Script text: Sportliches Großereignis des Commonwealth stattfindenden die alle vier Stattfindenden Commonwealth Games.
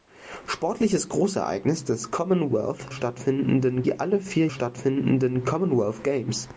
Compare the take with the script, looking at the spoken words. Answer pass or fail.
pass